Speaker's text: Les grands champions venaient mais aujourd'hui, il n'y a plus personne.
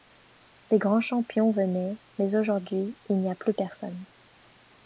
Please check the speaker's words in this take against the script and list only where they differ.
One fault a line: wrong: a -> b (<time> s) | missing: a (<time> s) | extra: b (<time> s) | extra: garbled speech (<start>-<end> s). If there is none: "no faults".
no faults